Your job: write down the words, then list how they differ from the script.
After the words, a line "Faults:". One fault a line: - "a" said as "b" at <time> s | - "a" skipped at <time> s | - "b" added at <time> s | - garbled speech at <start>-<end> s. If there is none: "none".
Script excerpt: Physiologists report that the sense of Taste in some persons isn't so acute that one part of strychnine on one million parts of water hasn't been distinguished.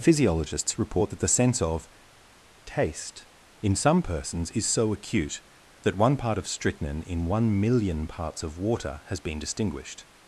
Physiologists report that the sense of Taste in some persons is so acute that one part of strychnine in one million parts of water has been distinguished.
Faults:
- "isn't" said as "is" at 4.5 s
- "on" said as "in" at 7.0 s
- "hasn't" said as "has" at 9.1 s